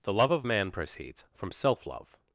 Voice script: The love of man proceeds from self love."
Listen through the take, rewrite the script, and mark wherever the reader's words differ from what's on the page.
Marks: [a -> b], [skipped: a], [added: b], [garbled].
The love of man proceeds from self love."